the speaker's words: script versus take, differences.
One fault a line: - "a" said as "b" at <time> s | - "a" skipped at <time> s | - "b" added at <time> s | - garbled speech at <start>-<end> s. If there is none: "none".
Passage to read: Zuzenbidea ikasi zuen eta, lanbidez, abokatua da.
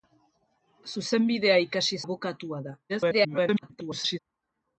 - "zuen eta lanbidez" skipped at 2.0 s
- garbled speech at 2.9-4.2 s